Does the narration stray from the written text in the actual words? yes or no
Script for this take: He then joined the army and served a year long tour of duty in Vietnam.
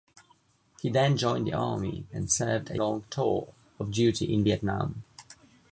yes